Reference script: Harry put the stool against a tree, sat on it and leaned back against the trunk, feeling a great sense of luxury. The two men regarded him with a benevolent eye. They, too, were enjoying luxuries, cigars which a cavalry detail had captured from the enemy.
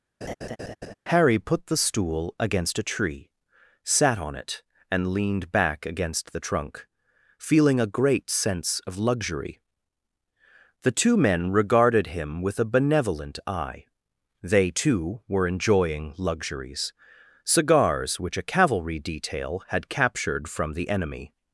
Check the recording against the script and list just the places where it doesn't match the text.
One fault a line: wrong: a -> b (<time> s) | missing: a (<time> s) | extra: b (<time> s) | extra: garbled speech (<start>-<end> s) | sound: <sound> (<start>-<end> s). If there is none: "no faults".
sound: laugh (0.2-0.9 s)